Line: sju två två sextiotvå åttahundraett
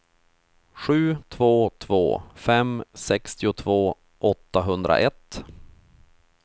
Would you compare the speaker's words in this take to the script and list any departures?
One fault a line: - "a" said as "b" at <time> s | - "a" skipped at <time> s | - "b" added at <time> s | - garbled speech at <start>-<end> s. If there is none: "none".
- "fem" added at 2.3 s